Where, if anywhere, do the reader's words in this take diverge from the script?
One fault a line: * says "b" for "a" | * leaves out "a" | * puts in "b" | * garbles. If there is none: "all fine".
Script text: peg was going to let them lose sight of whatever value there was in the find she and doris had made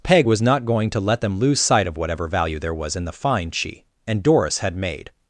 * puts in "not"